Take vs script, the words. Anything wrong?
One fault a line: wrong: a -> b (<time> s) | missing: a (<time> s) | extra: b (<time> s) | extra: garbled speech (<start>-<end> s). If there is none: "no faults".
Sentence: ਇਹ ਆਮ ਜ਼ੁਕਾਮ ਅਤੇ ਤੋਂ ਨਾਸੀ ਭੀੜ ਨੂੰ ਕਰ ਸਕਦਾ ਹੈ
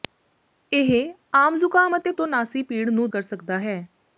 no faults